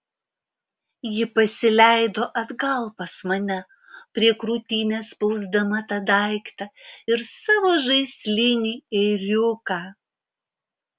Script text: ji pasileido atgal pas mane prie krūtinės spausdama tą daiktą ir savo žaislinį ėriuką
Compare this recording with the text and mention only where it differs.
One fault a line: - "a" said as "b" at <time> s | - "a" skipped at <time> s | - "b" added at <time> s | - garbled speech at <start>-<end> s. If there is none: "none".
none